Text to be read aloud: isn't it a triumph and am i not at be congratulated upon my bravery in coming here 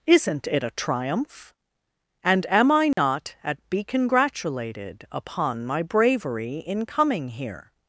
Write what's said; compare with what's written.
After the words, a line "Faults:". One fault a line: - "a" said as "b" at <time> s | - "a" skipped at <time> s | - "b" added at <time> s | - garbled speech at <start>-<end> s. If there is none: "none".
isn't it a triumph and am i not at be congratulated upon my bravery in coming here
Faults:
none